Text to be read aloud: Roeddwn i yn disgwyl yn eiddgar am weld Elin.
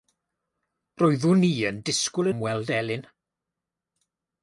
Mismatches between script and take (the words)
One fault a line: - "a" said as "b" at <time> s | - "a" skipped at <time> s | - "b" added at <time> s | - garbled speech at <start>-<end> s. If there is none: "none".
- "yn eiddgar" skipped at 2.3 s